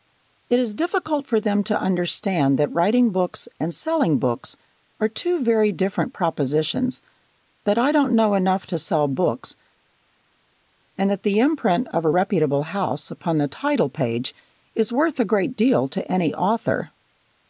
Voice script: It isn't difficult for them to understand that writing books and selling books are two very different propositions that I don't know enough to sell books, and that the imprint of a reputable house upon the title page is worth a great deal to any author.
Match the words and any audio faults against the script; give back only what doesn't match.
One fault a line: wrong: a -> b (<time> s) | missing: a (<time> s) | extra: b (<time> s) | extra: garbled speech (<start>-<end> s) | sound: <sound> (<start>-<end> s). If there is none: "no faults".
wrong: isn't -> is (0.6 s)